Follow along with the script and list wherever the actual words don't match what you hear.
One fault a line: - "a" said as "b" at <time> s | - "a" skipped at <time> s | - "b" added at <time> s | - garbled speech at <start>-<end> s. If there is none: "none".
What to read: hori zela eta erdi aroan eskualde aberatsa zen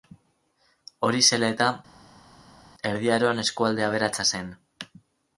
none